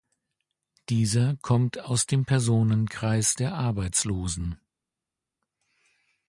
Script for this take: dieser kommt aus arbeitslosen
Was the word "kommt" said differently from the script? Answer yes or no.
no